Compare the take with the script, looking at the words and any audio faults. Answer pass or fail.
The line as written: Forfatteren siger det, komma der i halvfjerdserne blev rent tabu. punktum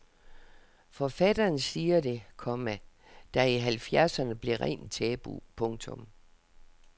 pass